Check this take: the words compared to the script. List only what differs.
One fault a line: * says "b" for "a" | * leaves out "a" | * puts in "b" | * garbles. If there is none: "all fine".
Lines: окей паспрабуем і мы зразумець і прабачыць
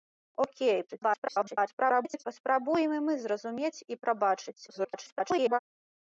* garbles
* garbles